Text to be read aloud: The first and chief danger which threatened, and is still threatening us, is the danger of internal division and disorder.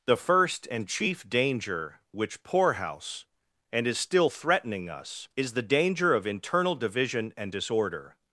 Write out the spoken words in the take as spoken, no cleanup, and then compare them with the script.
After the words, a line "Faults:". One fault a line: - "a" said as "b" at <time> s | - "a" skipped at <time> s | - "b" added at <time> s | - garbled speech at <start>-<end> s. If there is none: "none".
The first and chief danger which poorhouse, and is still threatening us, is the danger of internal division and disorder.
Faults:
- "threatened" said as "poorhouse" at 2.4 s